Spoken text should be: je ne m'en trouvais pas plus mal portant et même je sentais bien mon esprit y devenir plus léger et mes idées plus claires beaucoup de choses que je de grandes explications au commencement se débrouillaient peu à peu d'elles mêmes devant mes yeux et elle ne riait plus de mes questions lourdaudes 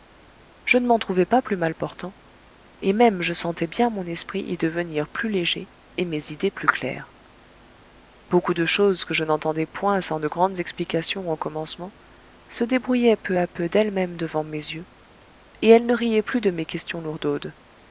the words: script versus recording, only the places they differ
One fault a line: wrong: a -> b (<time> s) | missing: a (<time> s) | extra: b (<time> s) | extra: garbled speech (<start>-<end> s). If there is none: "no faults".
extra: n'entendais point sans (9.2 s)